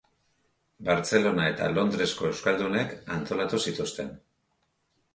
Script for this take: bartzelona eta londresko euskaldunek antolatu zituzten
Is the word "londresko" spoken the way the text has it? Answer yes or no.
yes